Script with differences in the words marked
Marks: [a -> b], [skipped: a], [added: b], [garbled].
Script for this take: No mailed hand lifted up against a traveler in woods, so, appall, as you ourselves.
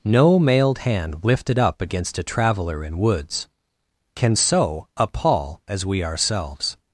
No mailed hand lifted up against a traveler in woods, [added: can] so, appall, as [you -> we] ourselves.